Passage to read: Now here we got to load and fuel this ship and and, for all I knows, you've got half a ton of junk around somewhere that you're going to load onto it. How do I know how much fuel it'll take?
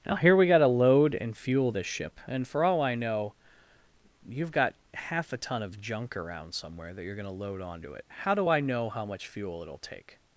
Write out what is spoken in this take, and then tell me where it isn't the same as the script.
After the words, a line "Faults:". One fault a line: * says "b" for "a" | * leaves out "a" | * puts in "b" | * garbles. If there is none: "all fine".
Now here we got to load and fuel this ship and, for all I know, you've got half a ton of junk around somewhere that you're going to load onto it. How do I know how much fuel it'll take?
Faults:
* leaves out "and"
* says "know" for "knows"